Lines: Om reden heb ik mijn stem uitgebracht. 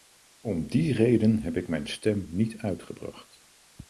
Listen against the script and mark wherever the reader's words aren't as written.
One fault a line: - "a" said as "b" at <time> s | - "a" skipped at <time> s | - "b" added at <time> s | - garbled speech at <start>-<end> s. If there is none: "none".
- "die" added at 0.7 s
- "niet" added at 2.3 s